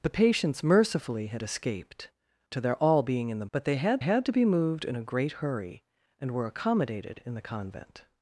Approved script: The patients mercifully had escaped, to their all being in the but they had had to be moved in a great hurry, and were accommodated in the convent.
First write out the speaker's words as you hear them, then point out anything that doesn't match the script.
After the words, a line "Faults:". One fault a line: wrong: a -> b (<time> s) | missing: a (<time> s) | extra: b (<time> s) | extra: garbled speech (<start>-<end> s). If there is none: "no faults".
The patients mercifully had escaped, to their all being in the but they had had to be moved in a great hurry, and were accommodated in the convent.
Faults:
no faults